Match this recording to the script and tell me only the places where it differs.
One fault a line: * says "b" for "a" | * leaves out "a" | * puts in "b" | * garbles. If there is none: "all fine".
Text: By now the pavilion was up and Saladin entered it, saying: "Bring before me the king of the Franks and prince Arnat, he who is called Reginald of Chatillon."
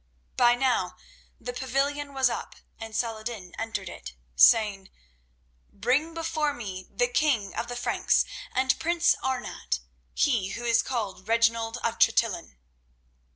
all fine